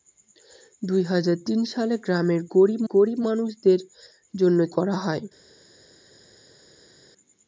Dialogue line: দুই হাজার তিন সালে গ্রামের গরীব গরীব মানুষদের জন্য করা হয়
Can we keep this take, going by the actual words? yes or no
yes